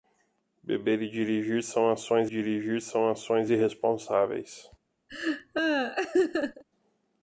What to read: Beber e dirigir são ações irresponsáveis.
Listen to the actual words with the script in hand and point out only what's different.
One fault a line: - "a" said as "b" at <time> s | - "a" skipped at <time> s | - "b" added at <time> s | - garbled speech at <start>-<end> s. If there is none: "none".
- "dirigir são ações" added at 2.3 s